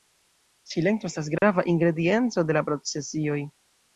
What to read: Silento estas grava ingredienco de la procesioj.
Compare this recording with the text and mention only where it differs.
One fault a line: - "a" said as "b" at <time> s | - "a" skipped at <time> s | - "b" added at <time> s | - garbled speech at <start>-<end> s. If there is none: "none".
none